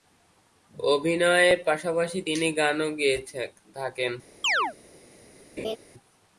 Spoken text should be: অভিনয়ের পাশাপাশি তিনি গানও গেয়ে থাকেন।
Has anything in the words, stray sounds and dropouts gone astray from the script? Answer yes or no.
yes